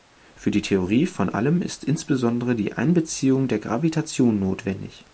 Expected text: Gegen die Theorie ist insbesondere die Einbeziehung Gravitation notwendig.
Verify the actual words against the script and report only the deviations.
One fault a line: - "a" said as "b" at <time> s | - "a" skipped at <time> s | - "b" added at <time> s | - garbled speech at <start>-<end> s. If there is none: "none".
- "Gegen" said as "Für" at 0.3 s
- "von Allem" added at 1.1 s
- "der" added at 3.5 s